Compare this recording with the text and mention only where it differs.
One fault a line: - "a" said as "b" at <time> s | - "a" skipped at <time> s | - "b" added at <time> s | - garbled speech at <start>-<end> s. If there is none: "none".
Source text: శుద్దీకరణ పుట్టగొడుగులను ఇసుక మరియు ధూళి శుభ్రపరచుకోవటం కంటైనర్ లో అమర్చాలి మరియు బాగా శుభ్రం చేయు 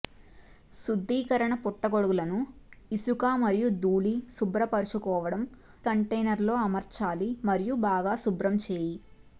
none